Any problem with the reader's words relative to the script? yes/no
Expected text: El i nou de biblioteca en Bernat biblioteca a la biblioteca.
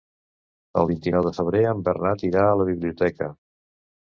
yes